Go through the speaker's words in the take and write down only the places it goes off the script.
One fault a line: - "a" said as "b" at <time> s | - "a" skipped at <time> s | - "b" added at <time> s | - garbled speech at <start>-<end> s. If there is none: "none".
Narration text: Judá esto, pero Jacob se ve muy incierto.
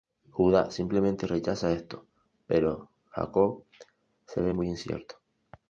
- "simplemente rechaza" added at 0.7 s